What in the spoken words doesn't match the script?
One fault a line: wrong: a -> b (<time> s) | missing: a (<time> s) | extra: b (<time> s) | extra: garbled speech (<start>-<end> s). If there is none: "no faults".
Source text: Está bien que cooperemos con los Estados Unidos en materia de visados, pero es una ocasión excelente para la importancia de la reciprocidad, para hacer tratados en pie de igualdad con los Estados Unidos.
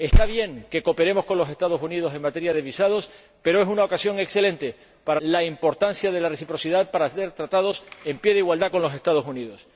no faults